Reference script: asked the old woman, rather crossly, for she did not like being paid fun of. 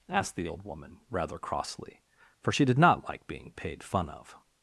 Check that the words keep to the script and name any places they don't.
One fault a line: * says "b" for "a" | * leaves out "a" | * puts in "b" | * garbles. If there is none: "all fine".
all fine